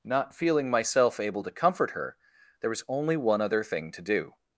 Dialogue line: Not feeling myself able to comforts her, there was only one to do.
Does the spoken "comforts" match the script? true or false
false